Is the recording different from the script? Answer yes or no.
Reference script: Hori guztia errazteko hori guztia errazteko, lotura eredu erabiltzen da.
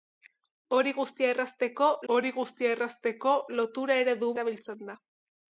no